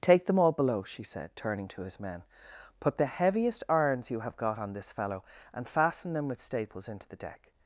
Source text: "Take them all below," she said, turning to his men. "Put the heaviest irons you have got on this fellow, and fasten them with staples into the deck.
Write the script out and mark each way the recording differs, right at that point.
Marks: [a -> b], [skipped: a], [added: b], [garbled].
"Take them all below," she said, turning to his men. "Put the heaviest irons you have got on this fellow, and fasten them with staples into the deck.